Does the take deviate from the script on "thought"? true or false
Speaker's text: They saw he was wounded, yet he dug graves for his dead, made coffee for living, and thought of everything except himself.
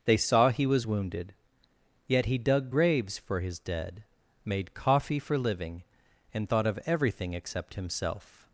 false